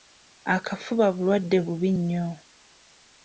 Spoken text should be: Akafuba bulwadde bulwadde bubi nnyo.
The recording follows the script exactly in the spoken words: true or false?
false